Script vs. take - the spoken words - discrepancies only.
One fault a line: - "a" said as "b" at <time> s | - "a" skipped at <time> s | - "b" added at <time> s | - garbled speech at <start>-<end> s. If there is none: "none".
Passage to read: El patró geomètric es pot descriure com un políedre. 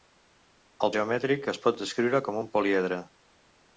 - "patró" skipped at 0.9 s